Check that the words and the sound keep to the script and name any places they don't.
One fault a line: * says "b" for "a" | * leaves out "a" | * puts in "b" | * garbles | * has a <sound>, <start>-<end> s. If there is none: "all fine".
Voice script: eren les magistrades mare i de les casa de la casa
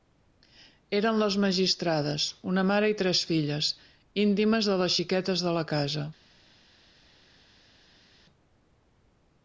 * puts in "una"
* puts in "tres filles íntimes"
* says "xiquetes" for "casa"